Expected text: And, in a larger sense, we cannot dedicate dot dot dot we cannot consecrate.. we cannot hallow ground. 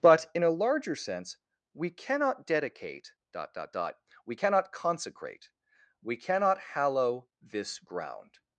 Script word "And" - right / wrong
wrong